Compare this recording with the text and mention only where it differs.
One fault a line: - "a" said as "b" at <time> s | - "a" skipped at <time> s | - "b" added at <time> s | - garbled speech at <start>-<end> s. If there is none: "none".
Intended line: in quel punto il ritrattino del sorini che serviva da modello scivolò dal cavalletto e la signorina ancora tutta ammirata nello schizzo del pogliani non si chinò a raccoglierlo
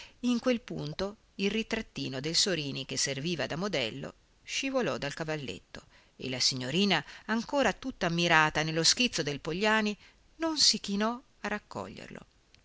none